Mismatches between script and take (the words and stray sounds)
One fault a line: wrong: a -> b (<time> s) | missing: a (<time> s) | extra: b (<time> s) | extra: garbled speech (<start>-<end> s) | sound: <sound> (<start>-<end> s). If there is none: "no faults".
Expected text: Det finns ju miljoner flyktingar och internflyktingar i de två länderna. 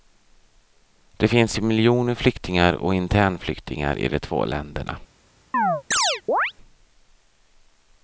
sound: chirp (5.5-6.5 s)